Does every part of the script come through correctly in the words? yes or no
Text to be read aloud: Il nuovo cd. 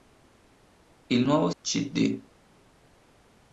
yes